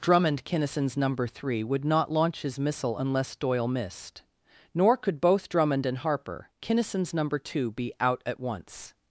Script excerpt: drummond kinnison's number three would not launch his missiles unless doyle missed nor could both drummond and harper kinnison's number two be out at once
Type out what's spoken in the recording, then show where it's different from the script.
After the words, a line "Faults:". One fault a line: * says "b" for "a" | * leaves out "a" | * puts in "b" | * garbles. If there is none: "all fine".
drummond kinnison's number three would not launch his missile unless doyle missed nor could both drummond and harper kinnison's number two be out at once
Faults:
* says "missile" for "missiles"